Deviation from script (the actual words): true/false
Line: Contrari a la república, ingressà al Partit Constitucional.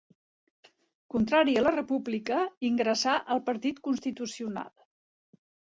false